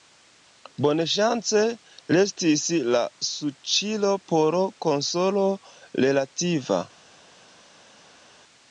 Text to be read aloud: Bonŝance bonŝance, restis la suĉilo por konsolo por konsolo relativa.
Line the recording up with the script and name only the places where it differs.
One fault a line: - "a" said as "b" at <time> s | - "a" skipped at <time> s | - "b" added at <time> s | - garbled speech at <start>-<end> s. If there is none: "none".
- "bonŝance" skipped at 1.6 s
- "por konsolo" skipped at 5.5 s